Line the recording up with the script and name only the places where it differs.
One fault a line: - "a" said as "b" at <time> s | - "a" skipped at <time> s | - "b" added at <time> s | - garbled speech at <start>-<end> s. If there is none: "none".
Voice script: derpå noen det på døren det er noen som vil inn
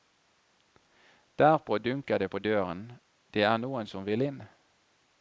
- "noen" said as "dunker" at 1.8 s